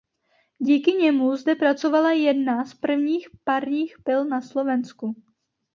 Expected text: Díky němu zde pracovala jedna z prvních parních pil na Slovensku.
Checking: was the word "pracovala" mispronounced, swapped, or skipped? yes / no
no